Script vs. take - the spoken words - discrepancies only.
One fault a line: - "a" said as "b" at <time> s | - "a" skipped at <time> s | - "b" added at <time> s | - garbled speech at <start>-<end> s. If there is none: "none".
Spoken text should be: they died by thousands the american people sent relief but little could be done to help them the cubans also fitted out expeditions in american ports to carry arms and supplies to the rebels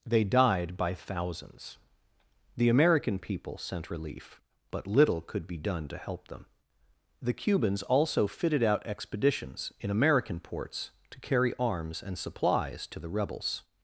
none